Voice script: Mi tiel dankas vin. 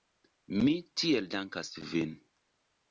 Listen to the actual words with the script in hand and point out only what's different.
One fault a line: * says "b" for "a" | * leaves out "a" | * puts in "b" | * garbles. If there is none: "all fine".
all fine